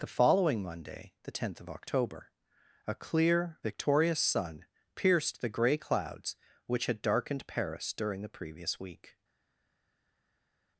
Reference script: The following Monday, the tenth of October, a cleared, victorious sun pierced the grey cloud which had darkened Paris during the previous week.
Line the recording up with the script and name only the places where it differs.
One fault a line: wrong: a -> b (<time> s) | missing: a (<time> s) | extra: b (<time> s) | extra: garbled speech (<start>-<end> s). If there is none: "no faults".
wrong: cleared -> clear (3.0 s)
wrong: cloud -> clouds (5.8 s)